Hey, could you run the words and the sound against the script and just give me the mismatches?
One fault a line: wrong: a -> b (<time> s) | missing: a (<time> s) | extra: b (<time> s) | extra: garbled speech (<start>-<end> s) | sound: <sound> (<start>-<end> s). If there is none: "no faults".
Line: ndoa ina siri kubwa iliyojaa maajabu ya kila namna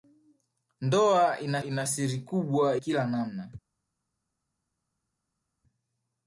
extra: ina (1.6 s)
missing: iliyojaa maajabu ya (2.8 s)